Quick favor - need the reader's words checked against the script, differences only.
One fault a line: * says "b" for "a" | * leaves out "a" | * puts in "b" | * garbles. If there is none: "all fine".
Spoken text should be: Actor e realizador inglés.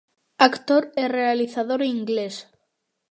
all fine